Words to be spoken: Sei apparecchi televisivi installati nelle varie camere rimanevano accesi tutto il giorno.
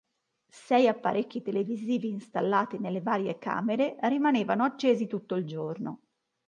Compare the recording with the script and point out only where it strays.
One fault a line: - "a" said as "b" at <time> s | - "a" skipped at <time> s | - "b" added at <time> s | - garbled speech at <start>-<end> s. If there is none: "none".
none